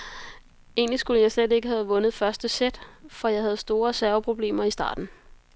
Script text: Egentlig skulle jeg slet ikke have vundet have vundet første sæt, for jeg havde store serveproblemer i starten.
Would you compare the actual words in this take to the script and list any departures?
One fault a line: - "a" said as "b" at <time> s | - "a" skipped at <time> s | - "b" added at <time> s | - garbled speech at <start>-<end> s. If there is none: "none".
- "have vundet" skipped at 2.1 s